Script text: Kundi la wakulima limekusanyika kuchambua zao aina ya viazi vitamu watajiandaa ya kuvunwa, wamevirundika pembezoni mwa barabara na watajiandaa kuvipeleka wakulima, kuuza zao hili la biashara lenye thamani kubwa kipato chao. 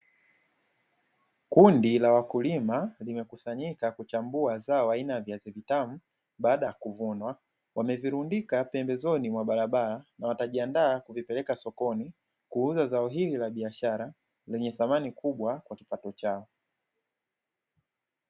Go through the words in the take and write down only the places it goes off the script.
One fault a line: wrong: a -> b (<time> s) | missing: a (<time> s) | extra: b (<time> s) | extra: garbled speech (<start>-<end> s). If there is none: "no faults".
wrong: watajiandaa -> baada (6.4 s)
wrong: wakulima -> sokoni (11.6 s)
extra: kwa (15.6 s)